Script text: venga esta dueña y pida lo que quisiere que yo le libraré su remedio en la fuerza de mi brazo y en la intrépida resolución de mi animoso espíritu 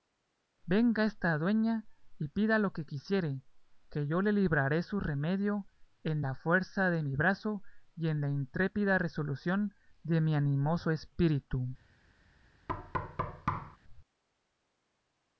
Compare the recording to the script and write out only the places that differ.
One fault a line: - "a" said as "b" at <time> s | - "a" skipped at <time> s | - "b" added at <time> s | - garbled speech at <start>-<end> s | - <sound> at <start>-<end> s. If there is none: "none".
- thud at 12.7-13.8 s